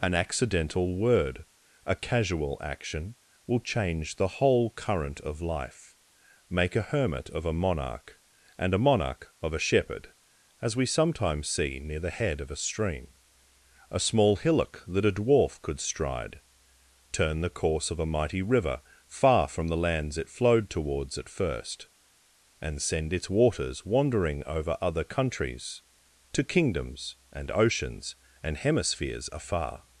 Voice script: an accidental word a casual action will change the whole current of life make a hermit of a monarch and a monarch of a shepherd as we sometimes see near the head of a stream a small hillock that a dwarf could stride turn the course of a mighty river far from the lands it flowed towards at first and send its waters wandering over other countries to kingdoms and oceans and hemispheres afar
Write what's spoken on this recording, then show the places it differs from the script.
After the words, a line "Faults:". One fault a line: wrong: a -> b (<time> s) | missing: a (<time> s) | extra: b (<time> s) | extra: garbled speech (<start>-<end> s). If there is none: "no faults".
an accidental word a casual action will change the whole current of life make a hermit of a monarch and a monarch of a shepherd as we sometimes see near the head of a stream a small hillock that a dwarf could stride turn the course of a mighty river far from the lands it flowed towards at first and send its waters wandering over other countries to kingdoms and oceans and hemispheres afar
Faults:
no faults